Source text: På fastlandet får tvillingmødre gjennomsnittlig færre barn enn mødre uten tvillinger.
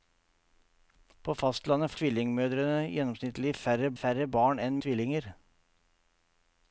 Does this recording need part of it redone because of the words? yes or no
yes